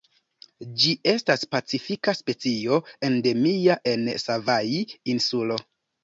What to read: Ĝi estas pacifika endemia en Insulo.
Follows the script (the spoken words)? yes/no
no